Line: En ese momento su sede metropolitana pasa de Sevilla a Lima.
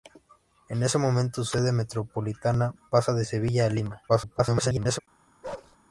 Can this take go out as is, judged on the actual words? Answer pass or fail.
fail